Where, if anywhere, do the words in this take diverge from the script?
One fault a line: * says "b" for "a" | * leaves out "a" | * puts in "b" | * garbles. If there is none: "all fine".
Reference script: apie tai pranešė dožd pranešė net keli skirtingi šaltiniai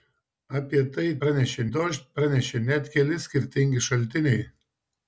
all fine